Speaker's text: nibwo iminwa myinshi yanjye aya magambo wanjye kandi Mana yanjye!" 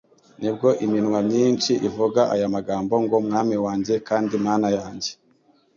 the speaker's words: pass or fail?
fail